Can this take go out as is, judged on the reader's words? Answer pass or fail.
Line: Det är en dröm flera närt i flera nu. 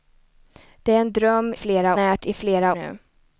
pass